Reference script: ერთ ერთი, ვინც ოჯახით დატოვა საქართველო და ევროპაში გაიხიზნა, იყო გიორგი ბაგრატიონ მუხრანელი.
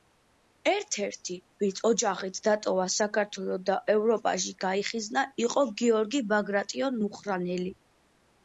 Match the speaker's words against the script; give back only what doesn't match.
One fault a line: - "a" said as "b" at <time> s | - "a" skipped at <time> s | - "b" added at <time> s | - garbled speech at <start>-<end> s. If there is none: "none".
none